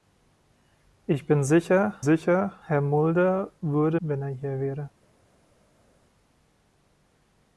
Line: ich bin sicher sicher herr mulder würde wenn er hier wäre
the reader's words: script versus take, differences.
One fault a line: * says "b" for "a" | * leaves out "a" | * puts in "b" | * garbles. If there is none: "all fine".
all fine